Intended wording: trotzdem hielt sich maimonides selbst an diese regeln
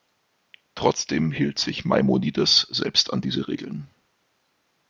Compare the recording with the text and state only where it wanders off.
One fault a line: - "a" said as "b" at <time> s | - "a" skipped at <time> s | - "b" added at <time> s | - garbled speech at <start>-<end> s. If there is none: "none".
none